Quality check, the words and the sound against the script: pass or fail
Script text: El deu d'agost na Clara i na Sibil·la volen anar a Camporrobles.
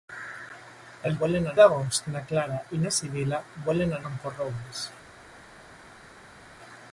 fail